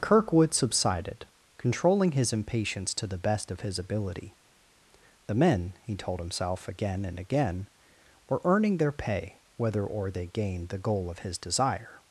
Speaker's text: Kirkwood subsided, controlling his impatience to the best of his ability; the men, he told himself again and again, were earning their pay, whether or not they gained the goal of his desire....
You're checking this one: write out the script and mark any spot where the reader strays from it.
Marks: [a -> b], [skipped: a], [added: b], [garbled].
Kirkwood subsided, controlling his impatience to the best of his ability; the men, he told himself again and again, were earning their pay, whether or [skipped: not] they gained the goal of his desire....